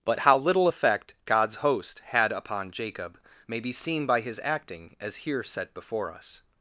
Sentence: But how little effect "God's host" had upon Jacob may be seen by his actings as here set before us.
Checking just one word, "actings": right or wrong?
wrong